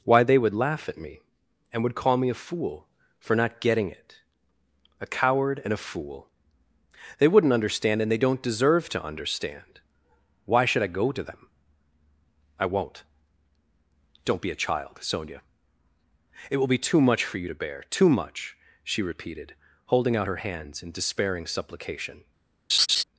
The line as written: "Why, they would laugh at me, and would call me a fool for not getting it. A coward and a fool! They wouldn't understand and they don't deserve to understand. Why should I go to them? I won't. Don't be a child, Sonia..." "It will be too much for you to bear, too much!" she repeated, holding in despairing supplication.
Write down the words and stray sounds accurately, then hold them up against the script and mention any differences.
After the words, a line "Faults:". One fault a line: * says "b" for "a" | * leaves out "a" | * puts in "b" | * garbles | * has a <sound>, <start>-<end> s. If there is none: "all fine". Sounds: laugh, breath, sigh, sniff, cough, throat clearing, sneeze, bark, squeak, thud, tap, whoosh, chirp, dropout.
"Why, they would laugh at me, and would call me a fool for not getting it. A coward and a fool! They wouldn't understand and they don't deserve to understand. Why should I go to them? I won't. Don't be a child, Sonia..." "It will be too much for you to bear, too much!" she repeated, holding out her hands in despairing supplication.
Faults:
* puts in "out her hands"
* has a laugh, 22.7-23.0 s